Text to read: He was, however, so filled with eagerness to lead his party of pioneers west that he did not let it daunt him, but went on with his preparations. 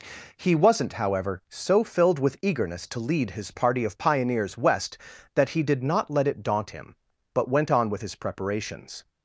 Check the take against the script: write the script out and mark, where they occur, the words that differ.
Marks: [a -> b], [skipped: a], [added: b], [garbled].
He [was, -> wasn't] however, so filled with eagerness to lead his party of pioneers west that he did not let it daunt him, but went on with his preparations.